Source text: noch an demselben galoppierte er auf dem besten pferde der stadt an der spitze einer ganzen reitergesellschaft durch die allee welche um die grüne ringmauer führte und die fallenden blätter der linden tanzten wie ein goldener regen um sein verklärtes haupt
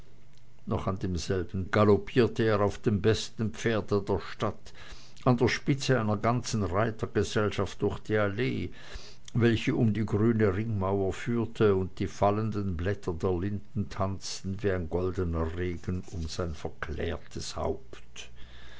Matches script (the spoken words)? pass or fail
pass